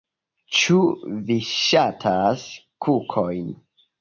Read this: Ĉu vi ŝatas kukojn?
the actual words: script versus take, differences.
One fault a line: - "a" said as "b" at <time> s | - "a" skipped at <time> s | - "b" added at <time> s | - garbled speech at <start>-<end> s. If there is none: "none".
none